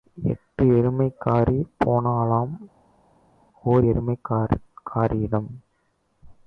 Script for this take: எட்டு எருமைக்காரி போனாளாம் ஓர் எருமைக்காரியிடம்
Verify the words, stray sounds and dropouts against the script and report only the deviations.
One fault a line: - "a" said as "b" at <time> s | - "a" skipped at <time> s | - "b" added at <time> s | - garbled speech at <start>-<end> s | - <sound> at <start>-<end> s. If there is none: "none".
none